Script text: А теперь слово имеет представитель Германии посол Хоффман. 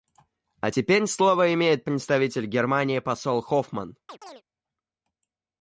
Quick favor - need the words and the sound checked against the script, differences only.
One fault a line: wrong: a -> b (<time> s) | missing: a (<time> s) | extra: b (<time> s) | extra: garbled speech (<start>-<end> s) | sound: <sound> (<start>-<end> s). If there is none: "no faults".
sound: chirp (4.1-4.4 s)